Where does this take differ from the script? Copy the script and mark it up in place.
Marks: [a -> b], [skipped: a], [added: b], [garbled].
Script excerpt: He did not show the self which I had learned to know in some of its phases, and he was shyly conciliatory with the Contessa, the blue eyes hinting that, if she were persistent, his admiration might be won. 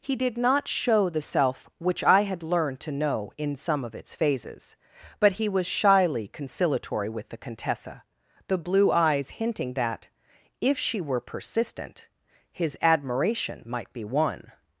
He did not show the self which I had learned to know in some of its phases, [and -> but] he was shyly conciliatory with the Contessa, the blue eyes hinting that, if she were persistent, his admiration might be won.